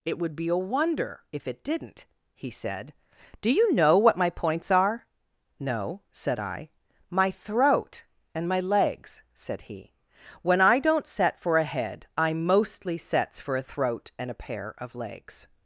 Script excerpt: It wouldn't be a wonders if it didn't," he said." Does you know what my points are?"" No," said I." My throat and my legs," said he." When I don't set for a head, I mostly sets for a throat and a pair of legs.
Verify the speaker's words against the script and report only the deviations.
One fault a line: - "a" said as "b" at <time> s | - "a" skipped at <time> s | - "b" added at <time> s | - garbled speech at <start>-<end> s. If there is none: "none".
- "wouldn't" said as "would" at 0.2 s
- "wonders" said as "wonder" at 0.6 s
- "Does" said as "Do" at 3.4 s